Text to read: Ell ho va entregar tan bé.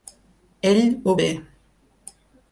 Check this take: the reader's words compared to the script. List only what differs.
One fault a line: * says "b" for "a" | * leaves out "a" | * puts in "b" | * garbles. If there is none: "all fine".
* leaves out "va entregar tan"